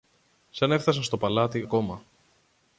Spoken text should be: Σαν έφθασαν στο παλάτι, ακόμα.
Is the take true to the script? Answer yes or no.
yes